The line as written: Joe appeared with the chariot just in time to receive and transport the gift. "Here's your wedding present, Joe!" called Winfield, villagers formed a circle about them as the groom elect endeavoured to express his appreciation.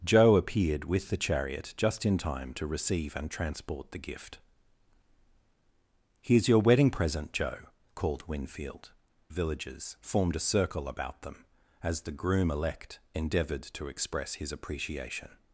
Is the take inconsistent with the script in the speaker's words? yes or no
no